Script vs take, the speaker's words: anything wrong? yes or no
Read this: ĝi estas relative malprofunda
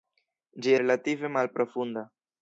yes